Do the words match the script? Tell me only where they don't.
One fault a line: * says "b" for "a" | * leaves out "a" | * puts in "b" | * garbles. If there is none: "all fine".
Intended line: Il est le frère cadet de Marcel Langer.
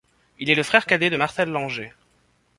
all fine